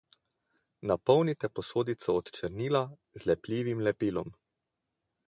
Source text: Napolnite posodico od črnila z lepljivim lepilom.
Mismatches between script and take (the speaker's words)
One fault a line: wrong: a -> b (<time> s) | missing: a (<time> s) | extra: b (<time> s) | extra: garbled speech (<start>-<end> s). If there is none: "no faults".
no faults